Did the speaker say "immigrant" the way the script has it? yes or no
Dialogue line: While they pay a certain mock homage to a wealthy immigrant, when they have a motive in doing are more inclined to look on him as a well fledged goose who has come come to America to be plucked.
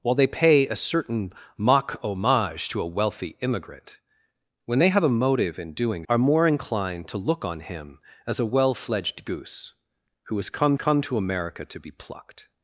yes